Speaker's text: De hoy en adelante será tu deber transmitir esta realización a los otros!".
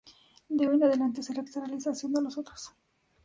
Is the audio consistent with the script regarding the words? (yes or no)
no